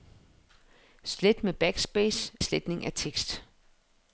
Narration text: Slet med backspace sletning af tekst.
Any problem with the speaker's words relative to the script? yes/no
no